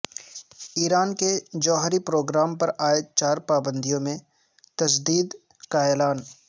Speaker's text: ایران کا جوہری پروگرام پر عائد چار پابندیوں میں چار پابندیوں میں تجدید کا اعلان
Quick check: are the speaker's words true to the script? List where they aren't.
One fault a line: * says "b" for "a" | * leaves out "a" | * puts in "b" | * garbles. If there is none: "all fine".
* says "کے" for "کا"
* leaves out "چار پابندیوں میں"